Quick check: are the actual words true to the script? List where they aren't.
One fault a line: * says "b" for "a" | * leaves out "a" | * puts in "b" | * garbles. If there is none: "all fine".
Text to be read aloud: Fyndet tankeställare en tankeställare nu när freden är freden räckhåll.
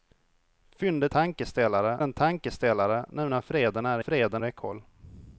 all fine